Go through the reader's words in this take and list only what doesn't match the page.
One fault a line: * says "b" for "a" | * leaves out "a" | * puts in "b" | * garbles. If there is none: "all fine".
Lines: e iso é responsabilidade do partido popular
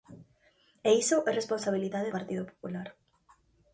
* leaves out "do"